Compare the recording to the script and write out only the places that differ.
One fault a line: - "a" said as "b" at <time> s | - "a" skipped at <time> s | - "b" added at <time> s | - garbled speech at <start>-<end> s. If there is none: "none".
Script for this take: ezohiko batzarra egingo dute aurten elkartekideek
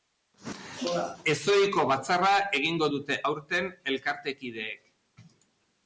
none